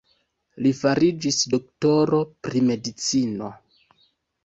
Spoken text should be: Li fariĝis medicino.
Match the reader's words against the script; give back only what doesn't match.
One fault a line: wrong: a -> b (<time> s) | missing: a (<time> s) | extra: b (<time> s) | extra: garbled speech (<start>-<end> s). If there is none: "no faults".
extra: doktoro pri (1.5 s)